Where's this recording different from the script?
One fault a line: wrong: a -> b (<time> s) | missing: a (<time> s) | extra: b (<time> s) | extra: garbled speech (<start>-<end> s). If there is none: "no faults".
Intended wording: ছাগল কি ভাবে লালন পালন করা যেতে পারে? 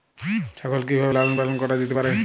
no faults